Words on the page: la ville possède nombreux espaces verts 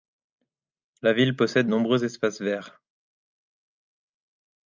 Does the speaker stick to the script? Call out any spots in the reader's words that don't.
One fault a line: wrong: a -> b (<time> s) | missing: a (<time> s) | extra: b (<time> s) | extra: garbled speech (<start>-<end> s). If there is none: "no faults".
no faults